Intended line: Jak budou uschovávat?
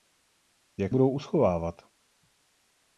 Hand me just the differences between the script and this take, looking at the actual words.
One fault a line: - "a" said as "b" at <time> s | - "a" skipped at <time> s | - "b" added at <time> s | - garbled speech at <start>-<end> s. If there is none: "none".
none